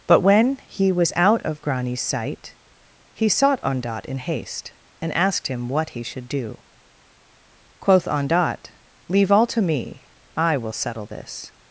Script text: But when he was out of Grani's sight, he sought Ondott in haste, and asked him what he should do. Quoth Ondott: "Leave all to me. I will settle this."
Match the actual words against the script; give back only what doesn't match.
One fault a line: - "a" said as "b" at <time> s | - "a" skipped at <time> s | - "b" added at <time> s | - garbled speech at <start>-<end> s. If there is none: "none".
none